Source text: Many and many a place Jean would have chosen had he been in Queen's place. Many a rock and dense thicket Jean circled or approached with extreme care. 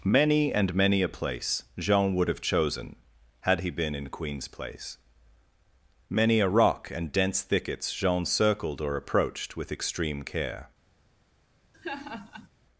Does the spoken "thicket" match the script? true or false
false